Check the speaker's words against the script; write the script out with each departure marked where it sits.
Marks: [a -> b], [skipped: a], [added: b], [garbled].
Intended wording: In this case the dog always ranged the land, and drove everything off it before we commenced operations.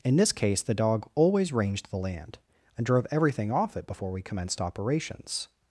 In this case the dog always ranged the land, and drove everything off it before we commenced operations.